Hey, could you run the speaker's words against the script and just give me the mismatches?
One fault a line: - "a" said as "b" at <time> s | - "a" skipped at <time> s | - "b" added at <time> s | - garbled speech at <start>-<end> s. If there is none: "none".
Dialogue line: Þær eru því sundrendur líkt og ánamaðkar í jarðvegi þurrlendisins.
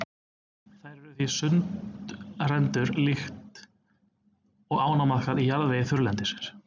none